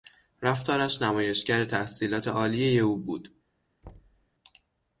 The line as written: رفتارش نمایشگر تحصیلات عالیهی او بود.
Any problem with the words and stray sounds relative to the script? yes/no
yes